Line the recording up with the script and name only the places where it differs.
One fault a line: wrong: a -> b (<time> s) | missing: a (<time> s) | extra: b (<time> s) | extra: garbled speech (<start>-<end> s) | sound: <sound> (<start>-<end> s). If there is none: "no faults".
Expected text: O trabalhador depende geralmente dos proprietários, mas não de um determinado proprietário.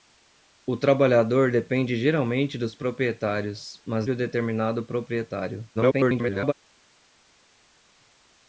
missing: não (4.1 s)
extra: garbled speech (5.7-6.5 s)